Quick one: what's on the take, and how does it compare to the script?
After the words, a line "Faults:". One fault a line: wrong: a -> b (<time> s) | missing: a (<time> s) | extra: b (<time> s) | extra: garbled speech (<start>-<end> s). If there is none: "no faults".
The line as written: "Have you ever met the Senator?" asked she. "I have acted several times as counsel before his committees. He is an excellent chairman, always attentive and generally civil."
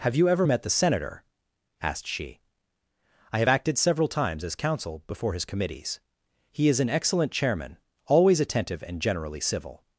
"Have you ever met the Senator?" asked she. "I have acted several times as counsel before his committees. He is an excellent chairman, always attentive and generally civil."
Faults:
no faults